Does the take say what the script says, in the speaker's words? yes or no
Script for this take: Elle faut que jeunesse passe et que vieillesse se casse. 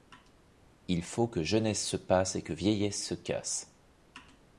no